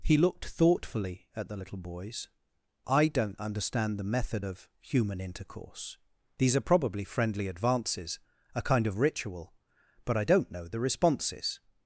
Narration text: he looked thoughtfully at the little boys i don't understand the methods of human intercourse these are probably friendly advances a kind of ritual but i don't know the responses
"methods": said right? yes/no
no